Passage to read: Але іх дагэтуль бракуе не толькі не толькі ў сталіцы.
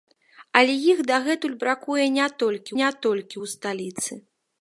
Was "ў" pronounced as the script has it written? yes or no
yes